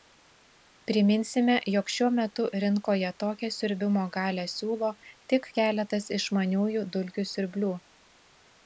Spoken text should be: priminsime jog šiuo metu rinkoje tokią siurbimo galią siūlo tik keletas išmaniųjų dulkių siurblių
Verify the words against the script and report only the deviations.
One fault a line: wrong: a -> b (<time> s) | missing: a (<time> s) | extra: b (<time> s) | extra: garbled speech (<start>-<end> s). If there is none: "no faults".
no faults